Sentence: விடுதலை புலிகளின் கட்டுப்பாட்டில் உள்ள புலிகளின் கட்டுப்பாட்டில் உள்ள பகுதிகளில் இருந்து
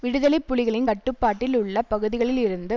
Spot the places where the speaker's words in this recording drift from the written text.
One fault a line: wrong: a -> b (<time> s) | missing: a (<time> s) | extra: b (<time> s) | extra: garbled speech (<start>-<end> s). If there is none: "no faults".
missing: புலிகளின் கட்டுப்பாட்டில் உள்ள (1.8 s)